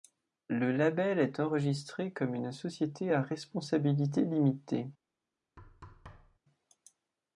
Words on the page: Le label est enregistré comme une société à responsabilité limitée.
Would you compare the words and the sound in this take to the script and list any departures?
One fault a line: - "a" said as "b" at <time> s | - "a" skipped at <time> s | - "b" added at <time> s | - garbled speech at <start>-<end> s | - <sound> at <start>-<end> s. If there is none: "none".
- thud at 5.6-6.4 s